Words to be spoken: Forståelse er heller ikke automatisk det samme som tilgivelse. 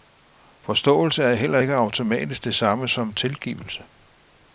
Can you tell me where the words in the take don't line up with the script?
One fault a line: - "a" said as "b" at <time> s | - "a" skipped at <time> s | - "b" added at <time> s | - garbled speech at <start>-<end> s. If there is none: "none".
none